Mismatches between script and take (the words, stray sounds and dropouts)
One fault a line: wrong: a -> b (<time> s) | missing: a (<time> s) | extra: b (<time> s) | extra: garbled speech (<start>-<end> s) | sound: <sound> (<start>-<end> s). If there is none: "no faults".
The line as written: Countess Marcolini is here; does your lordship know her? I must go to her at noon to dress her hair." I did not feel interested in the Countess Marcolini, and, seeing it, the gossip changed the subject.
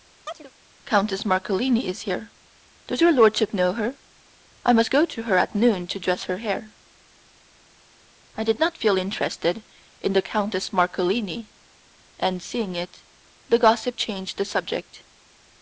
sound: chirp (0.3-0.5 s)